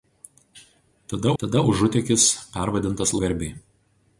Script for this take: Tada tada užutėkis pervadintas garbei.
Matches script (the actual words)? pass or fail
pass